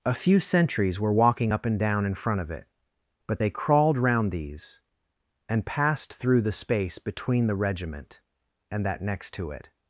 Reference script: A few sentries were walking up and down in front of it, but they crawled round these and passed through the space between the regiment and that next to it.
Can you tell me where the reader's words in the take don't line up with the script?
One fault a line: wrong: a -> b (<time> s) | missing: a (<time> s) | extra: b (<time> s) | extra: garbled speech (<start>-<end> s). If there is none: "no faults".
no faults